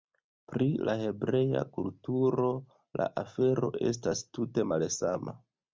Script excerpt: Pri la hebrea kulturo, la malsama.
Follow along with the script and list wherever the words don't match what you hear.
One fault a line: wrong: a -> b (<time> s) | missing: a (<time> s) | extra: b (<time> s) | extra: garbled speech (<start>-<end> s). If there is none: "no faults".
extra: afero estas tute (3.3 s)